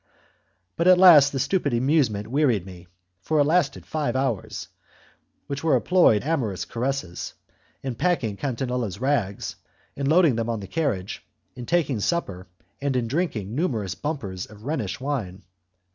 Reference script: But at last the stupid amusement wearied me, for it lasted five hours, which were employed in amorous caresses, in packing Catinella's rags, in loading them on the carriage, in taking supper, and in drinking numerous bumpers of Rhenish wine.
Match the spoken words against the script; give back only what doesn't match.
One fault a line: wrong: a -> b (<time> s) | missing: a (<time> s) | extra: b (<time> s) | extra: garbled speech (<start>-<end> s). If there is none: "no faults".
missing: in (6.2 s)